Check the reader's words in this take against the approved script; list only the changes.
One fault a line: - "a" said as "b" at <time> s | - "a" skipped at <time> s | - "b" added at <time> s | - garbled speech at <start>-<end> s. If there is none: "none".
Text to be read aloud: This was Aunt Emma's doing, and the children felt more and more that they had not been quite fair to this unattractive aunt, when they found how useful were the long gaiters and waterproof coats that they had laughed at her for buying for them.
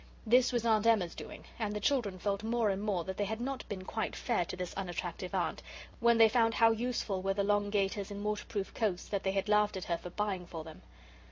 none